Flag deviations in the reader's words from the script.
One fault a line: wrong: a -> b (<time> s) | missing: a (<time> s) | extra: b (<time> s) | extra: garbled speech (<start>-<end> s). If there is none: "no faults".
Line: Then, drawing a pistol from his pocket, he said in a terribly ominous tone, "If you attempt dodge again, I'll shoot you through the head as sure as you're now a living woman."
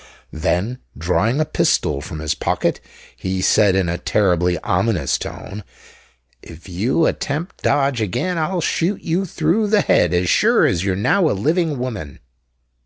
no faults